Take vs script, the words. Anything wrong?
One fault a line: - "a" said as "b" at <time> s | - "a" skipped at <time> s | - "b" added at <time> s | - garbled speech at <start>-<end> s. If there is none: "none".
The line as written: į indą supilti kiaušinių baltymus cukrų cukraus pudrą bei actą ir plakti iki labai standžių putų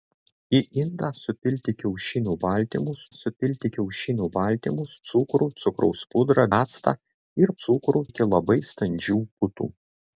- "supilti kiaušinių baltymus" added at 3.1 s
- "bei" skipped at 6.5 s
- "plakti" said as "cukrų" at 7.6 s